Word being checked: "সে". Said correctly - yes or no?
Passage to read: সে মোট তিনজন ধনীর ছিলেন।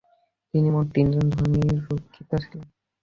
no